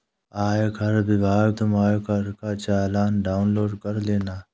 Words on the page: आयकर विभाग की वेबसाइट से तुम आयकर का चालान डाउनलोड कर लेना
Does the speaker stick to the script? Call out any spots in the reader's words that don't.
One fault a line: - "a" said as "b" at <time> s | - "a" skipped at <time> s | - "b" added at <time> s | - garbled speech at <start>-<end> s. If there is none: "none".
- "की वेबसाइट से" skipped at 1.5 s